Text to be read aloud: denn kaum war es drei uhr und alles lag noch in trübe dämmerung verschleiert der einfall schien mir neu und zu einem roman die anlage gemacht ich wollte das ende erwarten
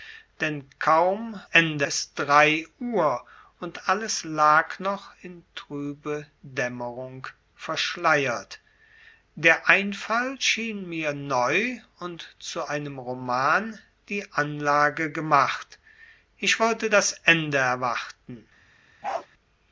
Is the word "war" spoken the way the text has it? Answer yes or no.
no